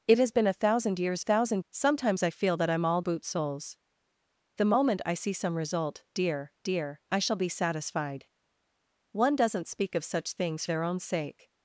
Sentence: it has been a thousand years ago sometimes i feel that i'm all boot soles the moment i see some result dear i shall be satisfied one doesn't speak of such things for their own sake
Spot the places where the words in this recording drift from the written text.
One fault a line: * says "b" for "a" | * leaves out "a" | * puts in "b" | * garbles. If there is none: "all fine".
* says "thousand" for "ago"
* puts in "dear"
* leaves out "for"